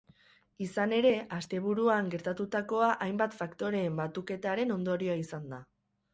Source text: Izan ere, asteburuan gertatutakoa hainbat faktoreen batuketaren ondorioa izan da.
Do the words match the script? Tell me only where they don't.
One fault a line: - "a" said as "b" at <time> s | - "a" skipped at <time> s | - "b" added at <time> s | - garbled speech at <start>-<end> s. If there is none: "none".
none